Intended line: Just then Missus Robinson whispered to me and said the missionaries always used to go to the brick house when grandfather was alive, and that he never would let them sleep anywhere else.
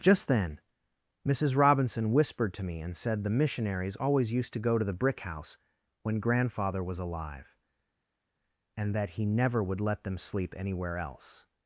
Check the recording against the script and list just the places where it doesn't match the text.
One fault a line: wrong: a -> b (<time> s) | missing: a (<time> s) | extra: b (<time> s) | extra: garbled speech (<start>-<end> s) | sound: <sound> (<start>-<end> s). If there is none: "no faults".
no faults